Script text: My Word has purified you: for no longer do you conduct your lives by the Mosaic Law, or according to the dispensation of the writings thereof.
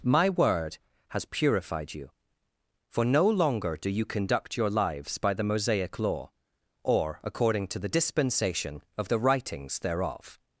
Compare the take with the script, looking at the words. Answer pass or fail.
pass